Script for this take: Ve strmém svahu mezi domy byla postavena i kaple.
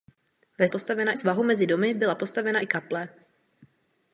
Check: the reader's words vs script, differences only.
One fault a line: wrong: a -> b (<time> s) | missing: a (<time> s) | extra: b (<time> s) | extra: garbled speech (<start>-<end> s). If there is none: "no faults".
wrong: strmém -> postavena (0.7 s)